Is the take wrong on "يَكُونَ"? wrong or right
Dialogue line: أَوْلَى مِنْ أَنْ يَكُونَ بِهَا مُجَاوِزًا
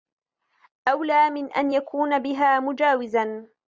right